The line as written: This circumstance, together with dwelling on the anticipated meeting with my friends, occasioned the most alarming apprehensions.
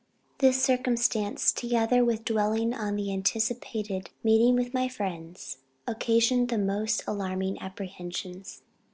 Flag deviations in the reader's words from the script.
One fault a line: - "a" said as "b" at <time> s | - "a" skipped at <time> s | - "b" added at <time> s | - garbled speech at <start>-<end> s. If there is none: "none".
none